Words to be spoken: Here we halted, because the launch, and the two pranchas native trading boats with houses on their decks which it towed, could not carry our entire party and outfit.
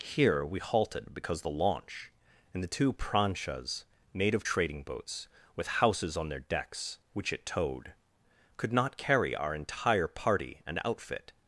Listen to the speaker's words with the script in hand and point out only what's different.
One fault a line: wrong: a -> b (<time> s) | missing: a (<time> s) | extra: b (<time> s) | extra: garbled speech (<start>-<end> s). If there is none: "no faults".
no faults